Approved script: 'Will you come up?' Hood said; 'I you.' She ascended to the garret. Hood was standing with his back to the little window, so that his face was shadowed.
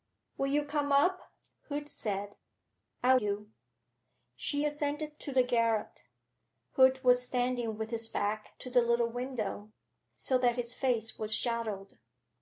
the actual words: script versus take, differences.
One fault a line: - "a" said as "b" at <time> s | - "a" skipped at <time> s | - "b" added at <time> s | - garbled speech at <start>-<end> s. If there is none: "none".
none